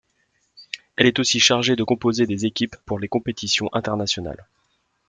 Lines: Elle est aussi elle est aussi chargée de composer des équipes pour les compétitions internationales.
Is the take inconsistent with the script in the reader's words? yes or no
yes